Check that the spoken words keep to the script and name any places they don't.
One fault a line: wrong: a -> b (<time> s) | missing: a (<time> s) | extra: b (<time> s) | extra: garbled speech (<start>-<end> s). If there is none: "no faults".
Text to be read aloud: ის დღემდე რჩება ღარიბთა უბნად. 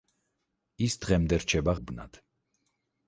missing: ღარიბთა (1.8 s)